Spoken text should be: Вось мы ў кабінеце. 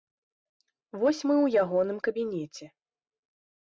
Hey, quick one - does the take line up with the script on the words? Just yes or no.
no